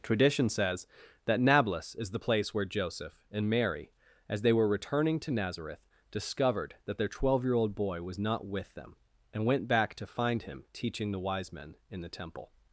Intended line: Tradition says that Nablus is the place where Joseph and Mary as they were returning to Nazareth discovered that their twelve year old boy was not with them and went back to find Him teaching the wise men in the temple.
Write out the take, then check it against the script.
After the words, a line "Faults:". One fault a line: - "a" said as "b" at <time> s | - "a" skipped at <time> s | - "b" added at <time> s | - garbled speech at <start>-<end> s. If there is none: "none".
Tradition says that Nablus is the place where Joseph and Mary as they were returning to Nazareth discovered that their twelve year old boy was not with them and went back to find Him teaching the wise men in the temple.
Faults:
none